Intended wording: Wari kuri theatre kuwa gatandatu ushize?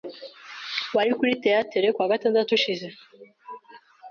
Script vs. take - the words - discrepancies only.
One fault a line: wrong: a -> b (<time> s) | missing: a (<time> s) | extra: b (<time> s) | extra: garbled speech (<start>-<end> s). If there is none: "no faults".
no faults